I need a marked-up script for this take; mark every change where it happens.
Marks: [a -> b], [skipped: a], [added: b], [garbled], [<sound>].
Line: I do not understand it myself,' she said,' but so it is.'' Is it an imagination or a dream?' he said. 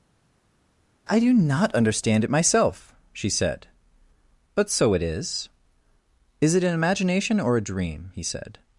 I do not understand it myself,' she said,' but so it is.'' Is it an imagination or a dream?' he said.